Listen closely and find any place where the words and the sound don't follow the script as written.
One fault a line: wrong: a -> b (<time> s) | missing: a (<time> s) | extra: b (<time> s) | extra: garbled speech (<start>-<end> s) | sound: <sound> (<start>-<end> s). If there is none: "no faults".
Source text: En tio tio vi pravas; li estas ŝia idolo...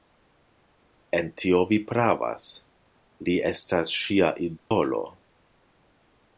missing: tio (1.6 s)
sound: dropout (4.6-4.7 s)